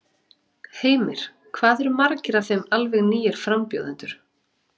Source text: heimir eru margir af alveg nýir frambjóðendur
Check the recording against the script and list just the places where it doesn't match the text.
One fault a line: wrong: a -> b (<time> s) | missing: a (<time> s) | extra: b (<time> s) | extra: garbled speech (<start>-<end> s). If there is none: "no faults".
extra: hvað (1.6 s)
extra: þeim (2.5 s)